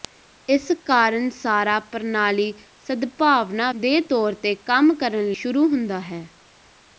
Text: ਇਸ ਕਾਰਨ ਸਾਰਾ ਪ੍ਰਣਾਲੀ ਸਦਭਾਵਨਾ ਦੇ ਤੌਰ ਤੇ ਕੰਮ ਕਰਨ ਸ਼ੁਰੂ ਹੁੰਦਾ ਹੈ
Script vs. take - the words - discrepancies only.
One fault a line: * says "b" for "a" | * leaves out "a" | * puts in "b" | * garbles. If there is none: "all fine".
all fine